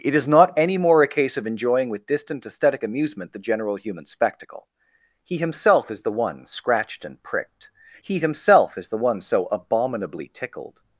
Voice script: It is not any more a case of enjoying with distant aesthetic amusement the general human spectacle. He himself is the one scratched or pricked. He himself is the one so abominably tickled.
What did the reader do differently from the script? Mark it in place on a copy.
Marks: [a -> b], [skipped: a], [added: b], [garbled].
It is not any more a case of enjoying with distant aesthetic amusement the general human spectacle. He himself is the one scratched [or -> and] pricked. He himself is the one so abominably tickled.